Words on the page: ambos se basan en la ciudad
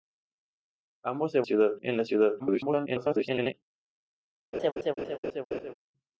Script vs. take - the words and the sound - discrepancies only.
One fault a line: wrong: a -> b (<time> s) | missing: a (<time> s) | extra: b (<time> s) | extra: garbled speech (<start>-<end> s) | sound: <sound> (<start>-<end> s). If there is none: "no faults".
wrong: basan -> ciudad (1.4 s)
extra: garbled speech (2.4-3.5 s)
sound: laugh (4.5-5.7 s)